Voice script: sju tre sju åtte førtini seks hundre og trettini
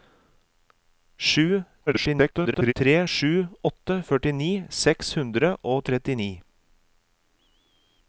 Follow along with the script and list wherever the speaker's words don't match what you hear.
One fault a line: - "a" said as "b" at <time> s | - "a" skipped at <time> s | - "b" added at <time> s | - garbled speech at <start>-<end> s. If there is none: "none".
- garbled speech at 1.9-2.7 s